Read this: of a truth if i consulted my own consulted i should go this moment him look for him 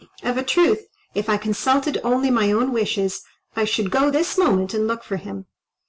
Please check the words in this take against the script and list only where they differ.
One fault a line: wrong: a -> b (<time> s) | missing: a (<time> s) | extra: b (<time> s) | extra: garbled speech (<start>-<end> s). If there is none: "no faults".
extra: only (2.0 s)
wrong: consulted -> wishes (2.7 s)
wrong: him -> and (4.7 s)